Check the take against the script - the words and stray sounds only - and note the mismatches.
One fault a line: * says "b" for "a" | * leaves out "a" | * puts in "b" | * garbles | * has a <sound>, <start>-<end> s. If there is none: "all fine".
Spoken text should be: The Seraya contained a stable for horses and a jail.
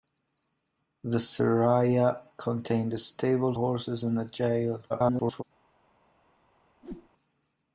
* leaves out "for"
* garbles
* has a whoosh, 6.8-7.1 s